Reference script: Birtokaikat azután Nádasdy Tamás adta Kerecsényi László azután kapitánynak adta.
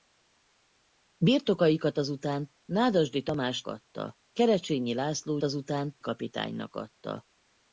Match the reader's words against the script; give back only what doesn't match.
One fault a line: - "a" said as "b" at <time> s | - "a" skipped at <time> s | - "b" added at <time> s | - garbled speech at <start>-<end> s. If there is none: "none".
none